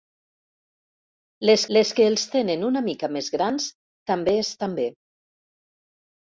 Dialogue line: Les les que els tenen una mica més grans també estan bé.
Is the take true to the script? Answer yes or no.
yes